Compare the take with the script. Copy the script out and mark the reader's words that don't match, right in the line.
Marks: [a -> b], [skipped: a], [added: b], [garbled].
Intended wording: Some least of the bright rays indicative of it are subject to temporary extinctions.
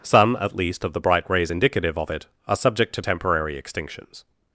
Some [added: at] least of the bright rays indicative of it are subject to temporary extinctions.